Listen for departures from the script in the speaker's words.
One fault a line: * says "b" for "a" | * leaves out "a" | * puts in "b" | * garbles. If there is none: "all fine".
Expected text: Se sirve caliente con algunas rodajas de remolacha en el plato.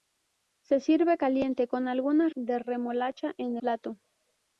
* leaves out "rodajas"
* leaves out "el"